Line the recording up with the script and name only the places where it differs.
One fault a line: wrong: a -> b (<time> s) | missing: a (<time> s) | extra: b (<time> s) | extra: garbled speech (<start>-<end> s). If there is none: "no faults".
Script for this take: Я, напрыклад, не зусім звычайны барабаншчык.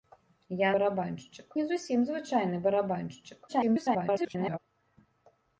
wrong: напрыклад -> барабаншчык (0.8 s)
extra: garbled speech (3.5-4.6 s)